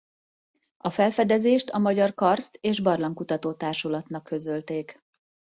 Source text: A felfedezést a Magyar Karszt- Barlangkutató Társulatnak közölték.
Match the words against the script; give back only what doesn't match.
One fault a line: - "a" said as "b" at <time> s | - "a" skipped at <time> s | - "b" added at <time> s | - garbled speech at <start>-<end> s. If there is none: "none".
- "és" added at 2.6 s